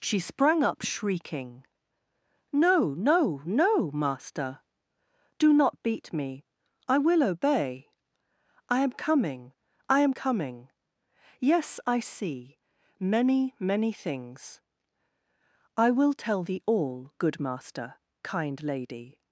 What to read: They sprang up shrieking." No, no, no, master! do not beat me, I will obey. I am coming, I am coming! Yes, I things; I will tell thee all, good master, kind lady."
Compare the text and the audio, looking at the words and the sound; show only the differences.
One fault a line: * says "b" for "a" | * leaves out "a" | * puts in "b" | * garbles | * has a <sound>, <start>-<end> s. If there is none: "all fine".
* says "She" for "They"
* puts in "see many many"